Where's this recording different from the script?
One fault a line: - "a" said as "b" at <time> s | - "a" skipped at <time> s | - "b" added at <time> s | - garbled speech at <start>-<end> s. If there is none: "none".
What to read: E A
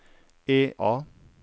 none